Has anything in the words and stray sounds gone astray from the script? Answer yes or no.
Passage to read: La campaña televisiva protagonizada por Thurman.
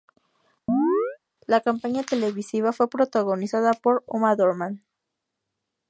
yes